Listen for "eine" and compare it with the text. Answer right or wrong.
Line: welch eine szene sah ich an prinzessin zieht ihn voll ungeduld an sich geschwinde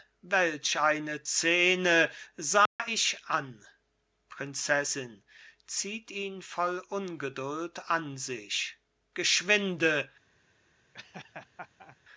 right